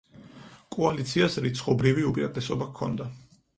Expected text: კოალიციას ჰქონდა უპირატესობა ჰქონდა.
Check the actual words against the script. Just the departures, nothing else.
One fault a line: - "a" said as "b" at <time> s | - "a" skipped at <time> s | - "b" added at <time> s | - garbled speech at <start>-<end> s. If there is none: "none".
- "ჰქონდა" said as "რიცხობრივი" at 1.5 s